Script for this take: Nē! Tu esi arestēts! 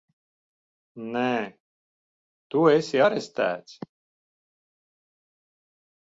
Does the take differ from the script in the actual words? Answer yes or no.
no